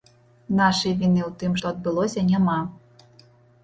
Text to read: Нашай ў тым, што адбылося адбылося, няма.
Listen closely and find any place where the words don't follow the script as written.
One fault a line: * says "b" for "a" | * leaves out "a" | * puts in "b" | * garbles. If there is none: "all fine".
* puts in "віны"
* leaves out "адбылося"